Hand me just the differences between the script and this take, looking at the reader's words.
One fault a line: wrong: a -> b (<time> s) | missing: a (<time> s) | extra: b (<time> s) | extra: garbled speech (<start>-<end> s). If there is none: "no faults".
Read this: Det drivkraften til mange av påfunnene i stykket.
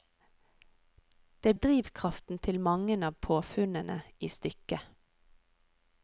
no faults